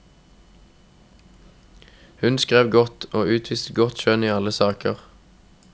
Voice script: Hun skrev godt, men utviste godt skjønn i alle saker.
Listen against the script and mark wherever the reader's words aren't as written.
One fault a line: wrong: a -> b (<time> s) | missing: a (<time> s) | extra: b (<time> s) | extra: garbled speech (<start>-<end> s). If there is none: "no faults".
wrong: men -> og (3.1 s)